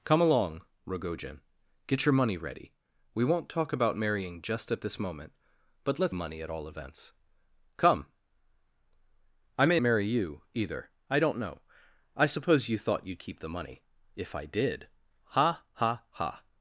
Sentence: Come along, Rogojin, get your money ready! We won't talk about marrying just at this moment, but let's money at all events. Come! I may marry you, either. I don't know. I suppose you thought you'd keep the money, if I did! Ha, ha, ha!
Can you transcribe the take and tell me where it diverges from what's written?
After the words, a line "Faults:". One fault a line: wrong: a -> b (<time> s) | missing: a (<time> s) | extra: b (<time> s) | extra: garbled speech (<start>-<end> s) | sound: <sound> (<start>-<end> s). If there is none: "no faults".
Come along, Rogojin, get your money ready! We won't talk about marrying just at this moment, but let's money at all events. Come! I may marry you, either. I don't know. I suppose you thought you'd keep the money, if I did! Ha, ha, ha!
Faults:
no faults